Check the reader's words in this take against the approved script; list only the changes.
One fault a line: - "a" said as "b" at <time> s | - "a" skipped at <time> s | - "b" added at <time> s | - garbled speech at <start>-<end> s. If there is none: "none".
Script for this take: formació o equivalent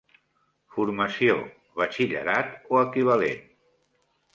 - "batxillerat" added at 1.8 s